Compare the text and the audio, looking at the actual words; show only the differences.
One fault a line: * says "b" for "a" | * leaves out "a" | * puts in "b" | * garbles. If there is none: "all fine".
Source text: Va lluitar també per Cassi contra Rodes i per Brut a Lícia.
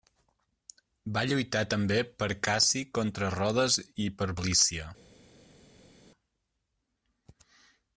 * leaves out "Brut"